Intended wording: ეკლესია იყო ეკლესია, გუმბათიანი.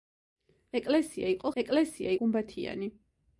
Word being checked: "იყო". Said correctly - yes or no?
yes